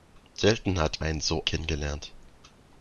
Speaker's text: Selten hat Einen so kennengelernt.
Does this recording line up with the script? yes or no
yes